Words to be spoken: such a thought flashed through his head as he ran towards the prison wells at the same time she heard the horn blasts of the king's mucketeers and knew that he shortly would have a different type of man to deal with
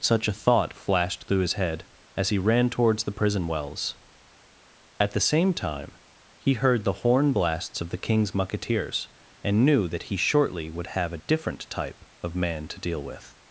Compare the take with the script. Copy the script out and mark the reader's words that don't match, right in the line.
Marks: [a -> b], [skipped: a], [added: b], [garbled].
such a thought flashed through his head as he ran towards the prison wells at the same time [she -> he] heard the horn blasts of the king's mucketeers and knew that he shortly would have a different type of man to deal with